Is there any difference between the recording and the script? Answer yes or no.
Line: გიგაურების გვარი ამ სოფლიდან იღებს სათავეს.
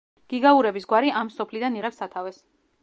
no